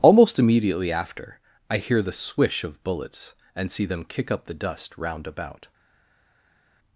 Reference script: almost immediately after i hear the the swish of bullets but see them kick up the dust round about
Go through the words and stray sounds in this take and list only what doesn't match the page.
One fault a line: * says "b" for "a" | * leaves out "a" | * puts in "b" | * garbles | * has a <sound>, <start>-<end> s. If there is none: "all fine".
* leaves out "the"
* says "and" for "but"